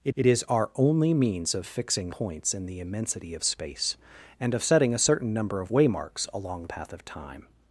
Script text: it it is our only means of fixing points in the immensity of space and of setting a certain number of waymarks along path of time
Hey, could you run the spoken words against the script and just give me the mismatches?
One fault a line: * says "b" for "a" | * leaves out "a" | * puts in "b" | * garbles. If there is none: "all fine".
all fine